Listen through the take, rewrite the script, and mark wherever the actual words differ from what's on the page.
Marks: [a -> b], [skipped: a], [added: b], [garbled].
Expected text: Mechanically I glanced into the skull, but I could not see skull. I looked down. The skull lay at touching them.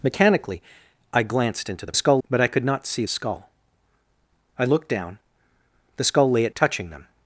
Mechanically I glanced into the skull, but I could not see skull. I looked down. The skull lay at touching them.